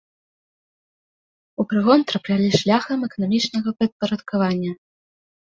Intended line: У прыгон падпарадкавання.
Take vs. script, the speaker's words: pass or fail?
fail